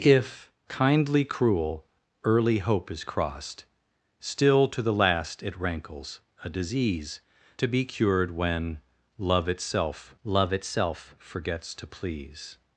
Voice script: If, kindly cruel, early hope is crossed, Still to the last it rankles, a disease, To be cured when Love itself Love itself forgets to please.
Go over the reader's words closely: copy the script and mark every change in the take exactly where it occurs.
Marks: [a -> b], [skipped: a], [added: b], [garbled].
If, kindly cruel, early hope is crossed, Still to the last it rankles, a disease, To be cured when Love itself Love itself forgets to please.